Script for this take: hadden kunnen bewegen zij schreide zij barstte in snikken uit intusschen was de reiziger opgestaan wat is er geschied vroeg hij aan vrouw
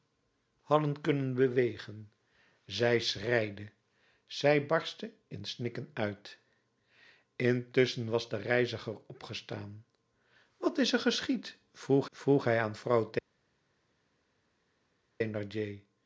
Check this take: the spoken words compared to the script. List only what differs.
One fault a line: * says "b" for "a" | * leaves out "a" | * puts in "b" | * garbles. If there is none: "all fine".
* puts in "vroeg"